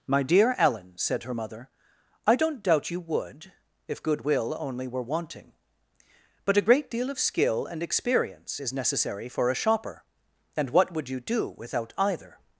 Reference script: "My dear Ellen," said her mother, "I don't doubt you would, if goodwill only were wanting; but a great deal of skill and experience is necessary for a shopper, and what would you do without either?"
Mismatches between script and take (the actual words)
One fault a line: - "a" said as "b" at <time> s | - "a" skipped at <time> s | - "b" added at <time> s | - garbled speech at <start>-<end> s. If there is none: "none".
none